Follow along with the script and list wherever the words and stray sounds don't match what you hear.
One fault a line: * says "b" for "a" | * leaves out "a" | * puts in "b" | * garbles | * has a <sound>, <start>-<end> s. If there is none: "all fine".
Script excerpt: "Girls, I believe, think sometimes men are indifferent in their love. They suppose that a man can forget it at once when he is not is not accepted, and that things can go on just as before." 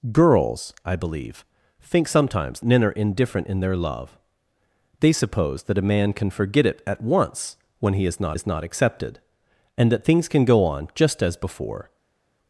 all fine